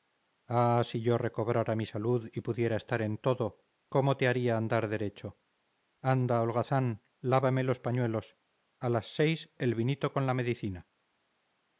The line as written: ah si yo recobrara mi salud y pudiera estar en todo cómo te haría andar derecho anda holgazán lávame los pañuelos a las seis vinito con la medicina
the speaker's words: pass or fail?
fail